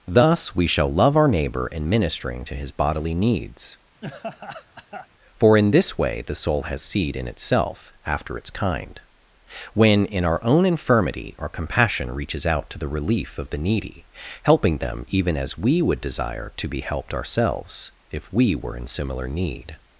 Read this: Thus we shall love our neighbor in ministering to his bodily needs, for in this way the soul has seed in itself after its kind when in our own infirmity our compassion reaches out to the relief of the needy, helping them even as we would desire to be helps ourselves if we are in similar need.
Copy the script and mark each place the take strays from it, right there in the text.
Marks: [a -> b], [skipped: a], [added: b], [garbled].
Thus we shall love our neighbor in ministering to his bodily needs, for in this way the soul has seed in itself after its kind when in our own infirmity our compassion reaches out to the relief of the needy, helping them even as we would desire to be [helps -> helped] ourselves if we [are -> were] in similar need.